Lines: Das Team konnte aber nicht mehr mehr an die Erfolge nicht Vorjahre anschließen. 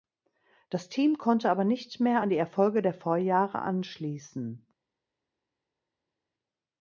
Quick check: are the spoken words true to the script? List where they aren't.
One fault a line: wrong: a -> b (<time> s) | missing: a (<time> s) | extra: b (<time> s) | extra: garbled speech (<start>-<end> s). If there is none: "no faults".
missing: mehr (2.2 s)
wrong: nicht -> der (2.8 s)